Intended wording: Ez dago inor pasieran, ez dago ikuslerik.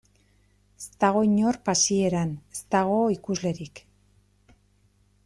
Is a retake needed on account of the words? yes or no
no